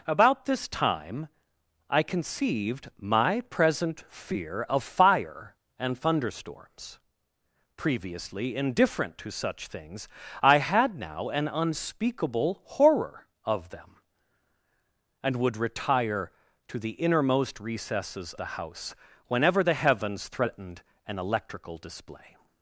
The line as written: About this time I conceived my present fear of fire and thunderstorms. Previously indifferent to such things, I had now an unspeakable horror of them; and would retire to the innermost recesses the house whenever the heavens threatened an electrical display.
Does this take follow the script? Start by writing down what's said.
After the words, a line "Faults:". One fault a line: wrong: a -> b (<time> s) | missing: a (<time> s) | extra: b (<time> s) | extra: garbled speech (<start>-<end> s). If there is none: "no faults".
About this time I conceived my present fear of fire and thunderstorms. Previously indifferent to such things, I had now an unspeakable horror of them; and would retire to the innermost recesses the house whenever the heavens threatened an electrical display.
Faults:
no faults